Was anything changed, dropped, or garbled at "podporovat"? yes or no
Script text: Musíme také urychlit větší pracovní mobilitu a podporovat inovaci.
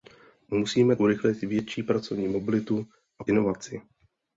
yes